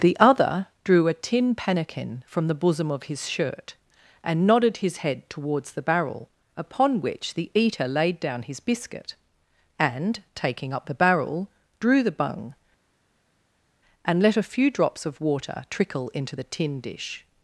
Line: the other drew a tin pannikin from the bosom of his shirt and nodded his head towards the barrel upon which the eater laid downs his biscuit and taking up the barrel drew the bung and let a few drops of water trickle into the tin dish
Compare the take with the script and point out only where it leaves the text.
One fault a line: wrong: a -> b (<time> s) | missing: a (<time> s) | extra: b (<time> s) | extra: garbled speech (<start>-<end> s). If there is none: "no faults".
wrong: downs -> down (8.2 s)